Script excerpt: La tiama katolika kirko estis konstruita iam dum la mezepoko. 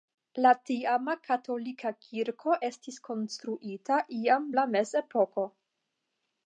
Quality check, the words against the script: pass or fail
fail